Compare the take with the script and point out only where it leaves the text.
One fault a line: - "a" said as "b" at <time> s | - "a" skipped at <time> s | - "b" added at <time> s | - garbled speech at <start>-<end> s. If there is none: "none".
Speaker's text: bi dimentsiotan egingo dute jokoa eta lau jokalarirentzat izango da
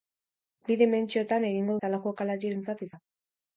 - "dute jokoa" skipped at 1.8 s
- "izango" skipped at 2.9 s